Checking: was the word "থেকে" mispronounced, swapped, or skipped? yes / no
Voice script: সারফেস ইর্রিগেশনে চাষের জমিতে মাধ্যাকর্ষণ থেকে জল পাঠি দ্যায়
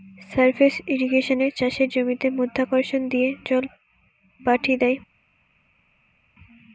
yes